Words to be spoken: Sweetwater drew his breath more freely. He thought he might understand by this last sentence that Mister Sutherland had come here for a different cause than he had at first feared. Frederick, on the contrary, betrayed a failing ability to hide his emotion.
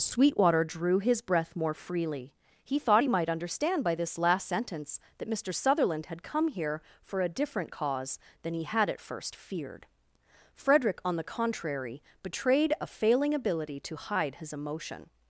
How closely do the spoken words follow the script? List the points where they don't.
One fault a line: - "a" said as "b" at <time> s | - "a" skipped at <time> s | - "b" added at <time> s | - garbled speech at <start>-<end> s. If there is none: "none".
none